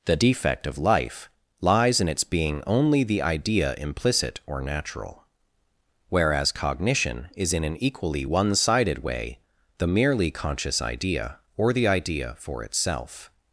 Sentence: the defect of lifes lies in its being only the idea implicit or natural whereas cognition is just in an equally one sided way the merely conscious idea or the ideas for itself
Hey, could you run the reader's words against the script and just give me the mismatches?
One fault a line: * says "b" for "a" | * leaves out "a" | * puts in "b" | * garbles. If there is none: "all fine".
* says "life" for "lifes"
* leaves out "just"
* says "idea" for "ideas"